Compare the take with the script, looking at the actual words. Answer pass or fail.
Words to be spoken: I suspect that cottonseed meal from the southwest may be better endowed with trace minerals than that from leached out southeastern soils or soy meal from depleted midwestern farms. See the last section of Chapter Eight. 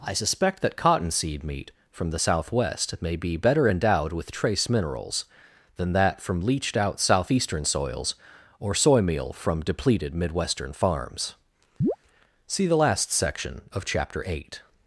fail